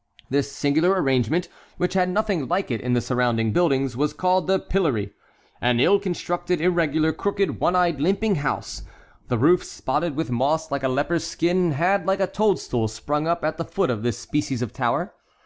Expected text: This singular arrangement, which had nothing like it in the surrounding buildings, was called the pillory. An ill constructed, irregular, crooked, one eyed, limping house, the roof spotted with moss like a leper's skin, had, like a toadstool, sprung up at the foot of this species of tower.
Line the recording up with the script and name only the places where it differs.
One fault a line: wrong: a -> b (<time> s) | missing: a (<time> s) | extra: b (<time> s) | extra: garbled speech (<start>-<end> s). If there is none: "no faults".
no faults